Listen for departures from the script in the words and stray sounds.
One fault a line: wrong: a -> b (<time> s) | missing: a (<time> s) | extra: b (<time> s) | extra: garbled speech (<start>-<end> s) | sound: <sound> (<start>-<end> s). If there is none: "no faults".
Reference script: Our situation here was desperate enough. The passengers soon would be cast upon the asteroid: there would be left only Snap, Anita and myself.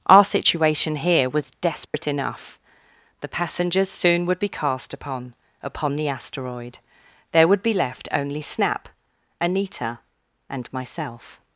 sound: dropout (1.9-1.9 s)
extra: upon (5.6 s)